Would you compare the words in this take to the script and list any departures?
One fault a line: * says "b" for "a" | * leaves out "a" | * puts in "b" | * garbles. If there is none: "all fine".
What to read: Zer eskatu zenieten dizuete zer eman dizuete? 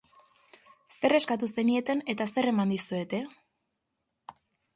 * says "eta" for "dizuete"